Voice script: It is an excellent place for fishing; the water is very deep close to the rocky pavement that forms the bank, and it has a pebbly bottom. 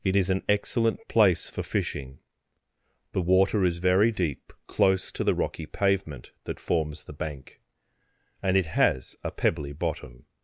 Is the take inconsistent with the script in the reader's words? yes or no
no